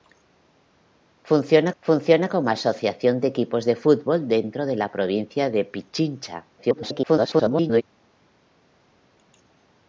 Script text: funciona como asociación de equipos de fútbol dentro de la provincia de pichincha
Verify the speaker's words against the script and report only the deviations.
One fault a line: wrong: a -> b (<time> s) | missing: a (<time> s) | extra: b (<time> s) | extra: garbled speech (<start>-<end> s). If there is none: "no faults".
extra: funciona (1.8 s)
extra: garbled speech (6.6-7.8 s)